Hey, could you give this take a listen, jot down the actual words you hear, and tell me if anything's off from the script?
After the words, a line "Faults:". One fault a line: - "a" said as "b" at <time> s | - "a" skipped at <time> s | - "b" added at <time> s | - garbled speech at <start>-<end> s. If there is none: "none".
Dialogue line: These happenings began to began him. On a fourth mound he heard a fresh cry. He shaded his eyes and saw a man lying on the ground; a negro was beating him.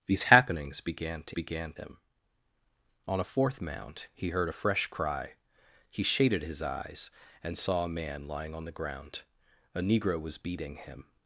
These happenings began to began him. On a fourth mound he heard a fresh cry. He shaded his eyes and saw a man lying on the ground; a negro was beating him.
Faults:
none